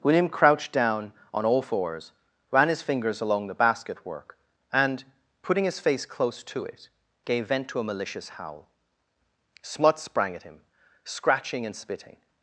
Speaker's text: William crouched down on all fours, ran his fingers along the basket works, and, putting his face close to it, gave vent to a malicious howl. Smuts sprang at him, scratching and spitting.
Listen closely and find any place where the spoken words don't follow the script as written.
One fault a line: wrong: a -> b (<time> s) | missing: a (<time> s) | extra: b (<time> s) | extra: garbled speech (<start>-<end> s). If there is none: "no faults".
wrong: works -> work (4.0 s)